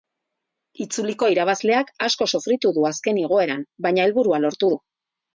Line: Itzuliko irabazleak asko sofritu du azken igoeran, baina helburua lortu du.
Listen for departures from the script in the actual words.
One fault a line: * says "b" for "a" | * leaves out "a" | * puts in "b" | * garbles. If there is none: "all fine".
all fine